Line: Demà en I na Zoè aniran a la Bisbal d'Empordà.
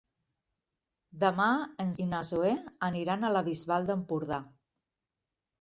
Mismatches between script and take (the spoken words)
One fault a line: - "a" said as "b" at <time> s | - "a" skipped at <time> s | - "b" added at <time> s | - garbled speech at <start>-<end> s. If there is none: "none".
none